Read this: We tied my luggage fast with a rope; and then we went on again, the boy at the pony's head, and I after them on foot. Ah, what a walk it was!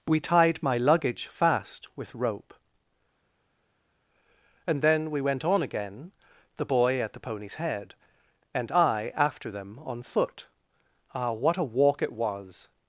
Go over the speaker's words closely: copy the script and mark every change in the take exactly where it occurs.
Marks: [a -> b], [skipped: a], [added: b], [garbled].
We tied my luggage fast with [skipped: a] rope; and then we went on again, the boy at the pony's head, and I after them on foot. Ah, what a walk it was!